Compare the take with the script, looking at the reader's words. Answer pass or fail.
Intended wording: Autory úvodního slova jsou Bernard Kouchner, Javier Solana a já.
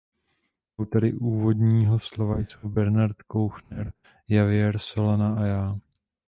pass